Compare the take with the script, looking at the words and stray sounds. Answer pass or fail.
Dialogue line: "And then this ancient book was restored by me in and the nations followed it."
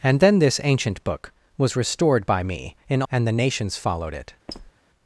fail